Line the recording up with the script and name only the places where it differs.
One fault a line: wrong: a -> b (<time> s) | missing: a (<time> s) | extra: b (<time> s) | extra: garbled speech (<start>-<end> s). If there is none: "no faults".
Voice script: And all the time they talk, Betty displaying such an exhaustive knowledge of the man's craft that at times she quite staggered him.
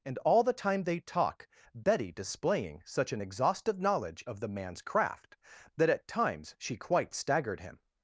no faults